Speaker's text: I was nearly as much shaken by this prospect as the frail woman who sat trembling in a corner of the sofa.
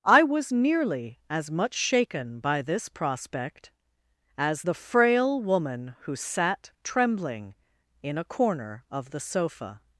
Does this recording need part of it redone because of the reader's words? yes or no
no